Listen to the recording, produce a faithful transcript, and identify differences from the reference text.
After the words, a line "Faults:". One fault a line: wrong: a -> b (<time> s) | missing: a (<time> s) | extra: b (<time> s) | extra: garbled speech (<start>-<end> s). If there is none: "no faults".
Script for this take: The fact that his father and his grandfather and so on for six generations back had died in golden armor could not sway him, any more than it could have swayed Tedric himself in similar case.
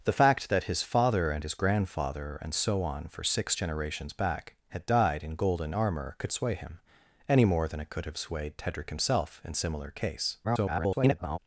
The fact that his father and his grandfather and so on for six generations back had died in golden armor could sway him, any more than it could have swayed Tedric himself in similar case. [garbled]
Faults:
missing: not (6.3 s)
extra: garbled speech (10.4-11.4 s)